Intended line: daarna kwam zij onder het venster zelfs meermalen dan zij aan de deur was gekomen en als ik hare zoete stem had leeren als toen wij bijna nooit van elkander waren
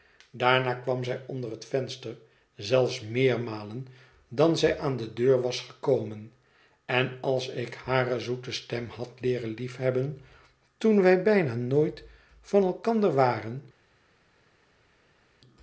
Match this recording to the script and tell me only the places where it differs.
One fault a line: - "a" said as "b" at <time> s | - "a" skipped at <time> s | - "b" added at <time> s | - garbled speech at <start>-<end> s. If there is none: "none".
- "als" said as "liefhebben" at 9.5 s